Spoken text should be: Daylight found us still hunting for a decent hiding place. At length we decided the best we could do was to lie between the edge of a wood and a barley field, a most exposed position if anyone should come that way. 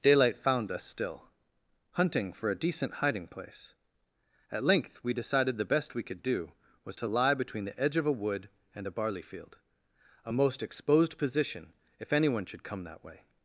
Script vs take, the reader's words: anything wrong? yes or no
no